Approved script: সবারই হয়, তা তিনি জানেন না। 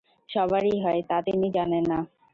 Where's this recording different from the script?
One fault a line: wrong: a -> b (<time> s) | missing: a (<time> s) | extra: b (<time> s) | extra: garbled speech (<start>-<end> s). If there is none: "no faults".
no faults